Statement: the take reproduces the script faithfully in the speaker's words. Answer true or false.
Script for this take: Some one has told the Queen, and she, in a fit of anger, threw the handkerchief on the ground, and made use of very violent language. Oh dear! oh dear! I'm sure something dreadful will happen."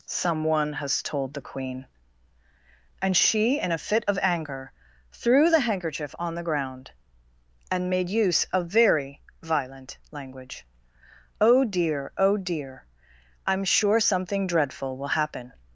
true